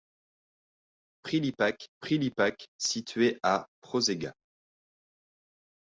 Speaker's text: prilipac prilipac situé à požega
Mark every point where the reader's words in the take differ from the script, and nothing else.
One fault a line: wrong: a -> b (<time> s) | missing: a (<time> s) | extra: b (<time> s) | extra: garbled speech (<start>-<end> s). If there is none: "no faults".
no faults